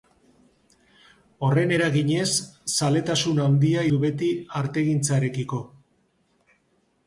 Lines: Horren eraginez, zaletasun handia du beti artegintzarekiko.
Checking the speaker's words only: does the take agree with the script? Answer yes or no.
yes